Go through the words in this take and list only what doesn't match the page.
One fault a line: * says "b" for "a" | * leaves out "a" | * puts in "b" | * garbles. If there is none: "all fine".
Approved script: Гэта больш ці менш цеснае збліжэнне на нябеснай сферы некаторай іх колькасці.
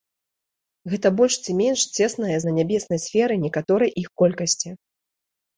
* leaves out "збліжэнне"